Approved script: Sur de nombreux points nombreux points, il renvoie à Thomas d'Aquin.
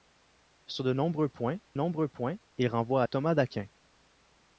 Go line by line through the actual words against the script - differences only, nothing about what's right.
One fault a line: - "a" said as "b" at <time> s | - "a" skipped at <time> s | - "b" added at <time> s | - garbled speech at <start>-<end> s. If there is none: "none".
none